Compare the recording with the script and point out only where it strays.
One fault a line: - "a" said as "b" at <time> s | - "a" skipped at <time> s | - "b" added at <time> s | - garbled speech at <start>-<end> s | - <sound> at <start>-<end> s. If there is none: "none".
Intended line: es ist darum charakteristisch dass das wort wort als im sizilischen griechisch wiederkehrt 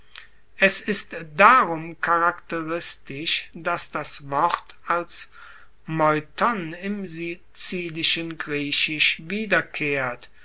- "wort" skipped at 4.8 s